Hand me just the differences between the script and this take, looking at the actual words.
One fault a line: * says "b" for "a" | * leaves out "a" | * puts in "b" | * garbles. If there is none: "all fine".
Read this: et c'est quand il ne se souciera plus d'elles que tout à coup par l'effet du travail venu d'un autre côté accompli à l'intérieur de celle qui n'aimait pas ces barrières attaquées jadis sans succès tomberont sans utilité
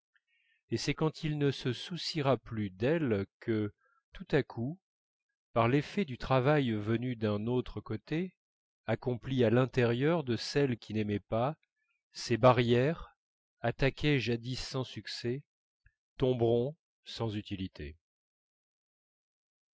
all fine